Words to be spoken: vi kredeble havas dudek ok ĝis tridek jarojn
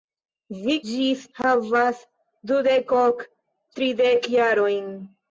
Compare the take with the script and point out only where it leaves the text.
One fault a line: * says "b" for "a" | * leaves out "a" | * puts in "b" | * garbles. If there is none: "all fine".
* says "ĝis" for "kredeble"
* leaves out "ĝis"